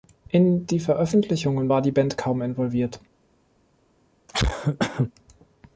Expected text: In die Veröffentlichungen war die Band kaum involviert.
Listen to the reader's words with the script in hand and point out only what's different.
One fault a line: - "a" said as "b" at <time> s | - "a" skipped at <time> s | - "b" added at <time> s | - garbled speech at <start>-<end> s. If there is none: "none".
none